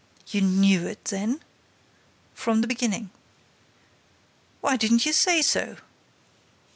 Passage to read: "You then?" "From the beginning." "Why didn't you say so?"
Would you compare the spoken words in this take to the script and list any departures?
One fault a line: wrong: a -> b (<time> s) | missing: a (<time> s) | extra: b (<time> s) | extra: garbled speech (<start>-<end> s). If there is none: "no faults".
extra: knew it (0.4 s)